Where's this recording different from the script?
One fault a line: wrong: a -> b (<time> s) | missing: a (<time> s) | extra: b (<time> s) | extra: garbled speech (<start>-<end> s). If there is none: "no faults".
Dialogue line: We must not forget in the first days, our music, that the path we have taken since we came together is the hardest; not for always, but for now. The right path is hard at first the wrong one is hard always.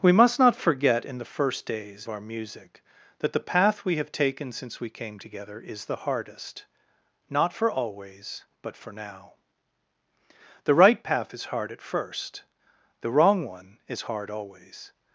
no faults